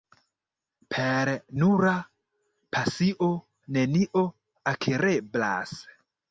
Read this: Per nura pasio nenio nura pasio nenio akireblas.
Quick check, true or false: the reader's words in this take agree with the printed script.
false